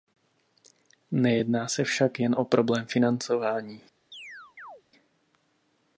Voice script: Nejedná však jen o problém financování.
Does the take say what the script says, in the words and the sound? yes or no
no